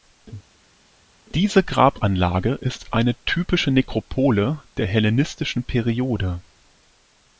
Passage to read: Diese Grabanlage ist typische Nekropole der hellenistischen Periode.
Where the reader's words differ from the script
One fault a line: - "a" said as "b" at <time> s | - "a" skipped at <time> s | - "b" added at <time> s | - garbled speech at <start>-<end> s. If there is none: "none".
- "eine" added at 2.9 s